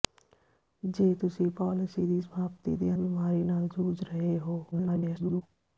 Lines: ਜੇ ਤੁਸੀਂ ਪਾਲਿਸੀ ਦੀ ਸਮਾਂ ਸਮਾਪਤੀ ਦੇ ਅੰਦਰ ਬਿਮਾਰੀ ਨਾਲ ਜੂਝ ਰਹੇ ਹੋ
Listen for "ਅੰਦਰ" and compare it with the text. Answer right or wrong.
wrong